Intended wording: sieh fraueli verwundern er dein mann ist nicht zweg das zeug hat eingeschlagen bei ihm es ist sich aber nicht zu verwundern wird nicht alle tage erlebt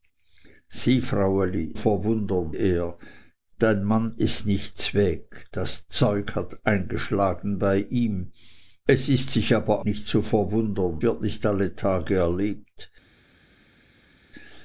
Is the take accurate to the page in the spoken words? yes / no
yes